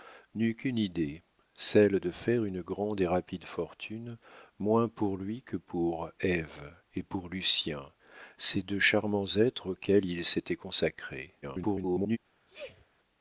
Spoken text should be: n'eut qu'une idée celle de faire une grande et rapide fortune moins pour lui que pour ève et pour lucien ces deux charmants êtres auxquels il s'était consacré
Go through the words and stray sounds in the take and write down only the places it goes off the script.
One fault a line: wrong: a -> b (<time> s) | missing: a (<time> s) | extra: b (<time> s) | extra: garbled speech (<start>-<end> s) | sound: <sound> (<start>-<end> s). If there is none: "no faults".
extra: garbled speech (11.4-12.2 s)
sound: sneeze (12.5-12.9 s)